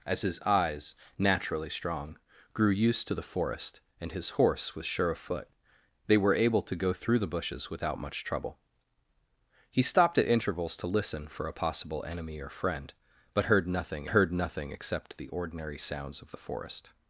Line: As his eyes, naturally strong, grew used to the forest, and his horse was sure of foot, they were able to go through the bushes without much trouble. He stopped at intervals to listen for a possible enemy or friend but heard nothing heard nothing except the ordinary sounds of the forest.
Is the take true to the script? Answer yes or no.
yes